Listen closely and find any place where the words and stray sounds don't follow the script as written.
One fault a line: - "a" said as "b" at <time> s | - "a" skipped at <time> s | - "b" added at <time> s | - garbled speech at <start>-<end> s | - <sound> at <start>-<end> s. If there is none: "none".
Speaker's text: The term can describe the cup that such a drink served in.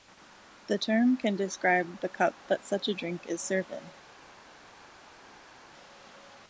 - "is" added at 3.3 s